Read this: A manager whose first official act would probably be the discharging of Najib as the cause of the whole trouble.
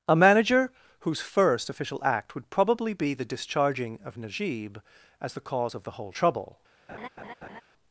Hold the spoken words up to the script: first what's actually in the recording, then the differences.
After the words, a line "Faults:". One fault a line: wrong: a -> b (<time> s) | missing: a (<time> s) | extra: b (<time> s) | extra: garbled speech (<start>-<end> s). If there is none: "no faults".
A manager whose first official act would probably be the discharging of Najib as the cause of the whole trouble.
Faults:
no faults